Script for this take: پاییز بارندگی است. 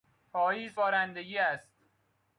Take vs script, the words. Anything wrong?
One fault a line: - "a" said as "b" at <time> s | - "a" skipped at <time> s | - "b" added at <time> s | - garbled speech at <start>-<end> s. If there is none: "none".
none